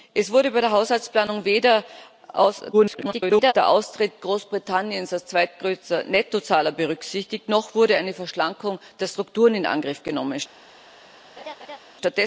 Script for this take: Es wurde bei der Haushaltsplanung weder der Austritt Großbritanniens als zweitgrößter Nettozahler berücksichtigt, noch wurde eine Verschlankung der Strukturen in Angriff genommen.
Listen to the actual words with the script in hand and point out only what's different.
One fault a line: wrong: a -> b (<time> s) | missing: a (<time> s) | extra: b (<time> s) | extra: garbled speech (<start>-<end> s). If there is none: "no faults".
extra: garbled speech (2.7-3.5 s)